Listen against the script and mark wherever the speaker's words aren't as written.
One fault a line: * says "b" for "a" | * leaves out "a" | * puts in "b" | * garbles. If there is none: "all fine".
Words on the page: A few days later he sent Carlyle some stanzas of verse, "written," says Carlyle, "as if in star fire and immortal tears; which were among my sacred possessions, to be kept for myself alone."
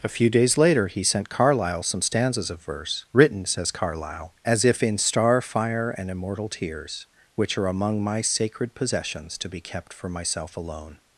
* says "are" for "were"